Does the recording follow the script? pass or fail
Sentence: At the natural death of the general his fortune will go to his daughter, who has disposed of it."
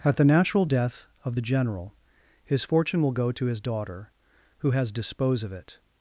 fail